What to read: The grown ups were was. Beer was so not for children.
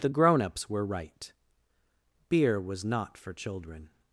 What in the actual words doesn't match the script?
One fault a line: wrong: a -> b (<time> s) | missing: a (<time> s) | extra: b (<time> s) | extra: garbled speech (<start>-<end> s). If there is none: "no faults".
wrong: was -> right (0.9 s)
missing: so (2.9 s)